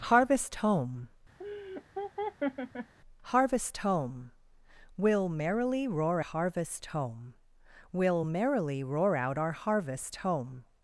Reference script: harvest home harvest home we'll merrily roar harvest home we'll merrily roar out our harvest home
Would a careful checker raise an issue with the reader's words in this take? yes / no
no